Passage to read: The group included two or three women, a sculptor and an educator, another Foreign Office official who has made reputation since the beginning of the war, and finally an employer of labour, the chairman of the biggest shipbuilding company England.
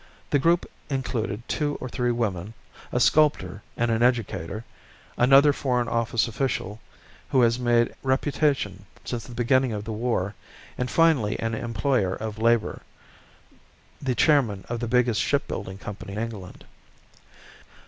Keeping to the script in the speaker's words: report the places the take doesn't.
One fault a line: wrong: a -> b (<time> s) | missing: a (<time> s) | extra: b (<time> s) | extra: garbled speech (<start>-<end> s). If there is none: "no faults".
no faults